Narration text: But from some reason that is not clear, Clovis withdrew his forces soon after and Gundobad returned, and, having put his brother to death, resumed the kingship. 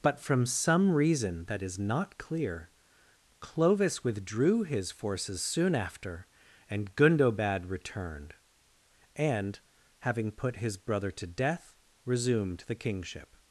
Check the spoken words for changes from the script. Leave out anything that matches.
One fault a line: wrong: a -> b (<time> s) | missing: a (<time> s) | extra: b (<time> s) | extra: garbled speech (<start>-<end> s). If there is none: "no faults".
no faults